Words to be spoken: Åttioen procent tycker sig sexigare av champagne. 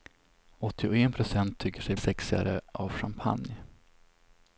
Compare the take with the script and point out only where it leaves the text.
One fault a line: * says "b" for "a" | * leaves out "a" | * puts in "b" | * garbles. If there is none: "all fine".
all fine